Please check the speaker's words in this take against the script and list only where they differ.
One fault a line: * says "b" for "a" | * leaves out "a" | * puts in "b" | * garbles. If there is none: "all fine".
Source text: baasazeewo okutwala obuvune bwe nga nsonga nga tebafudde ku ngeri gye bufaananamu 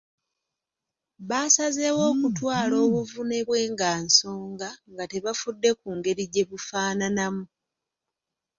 all fine